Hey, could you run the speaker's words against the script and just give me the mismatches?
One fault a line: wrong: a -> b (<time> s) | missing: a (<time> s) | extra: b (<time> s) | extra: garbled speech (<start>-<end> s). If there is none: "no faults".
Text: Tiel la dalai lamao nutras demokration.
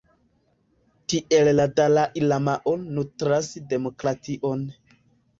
no faults